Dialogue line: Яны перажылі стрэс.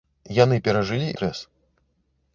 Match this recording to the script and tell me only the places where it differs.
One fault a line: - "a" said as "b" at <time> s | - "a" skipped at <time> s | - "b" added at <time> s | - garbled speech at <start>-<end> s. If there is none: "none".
none